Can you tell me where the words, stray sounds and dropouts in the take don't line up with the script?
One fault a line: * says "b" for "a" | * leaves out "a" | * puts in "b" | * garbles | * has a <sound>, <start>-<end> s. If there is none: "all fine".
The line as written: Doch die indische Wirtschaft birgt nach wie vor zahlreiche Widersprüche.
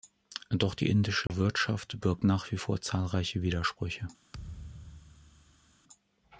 * has a dropout, 1.3-1.3 s
* has a thud, 4.3-5.8 s